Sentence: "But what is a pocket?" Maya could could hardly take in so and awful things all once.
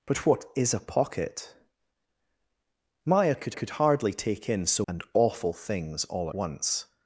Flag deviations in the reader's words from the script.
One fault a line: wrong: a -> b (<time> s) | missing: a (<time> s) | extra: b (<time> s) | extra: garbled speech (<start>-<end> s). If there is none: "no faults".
no faults